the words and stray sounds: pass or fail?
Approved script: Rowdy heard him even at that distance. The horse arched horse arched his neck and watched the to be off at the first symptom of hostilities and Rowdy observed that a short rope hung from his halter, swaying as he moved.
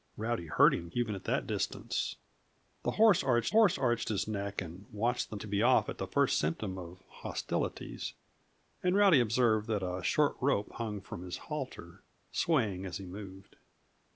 pass